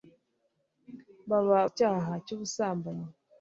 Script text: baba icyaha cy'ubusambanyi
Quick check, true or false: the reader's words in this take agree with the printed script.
true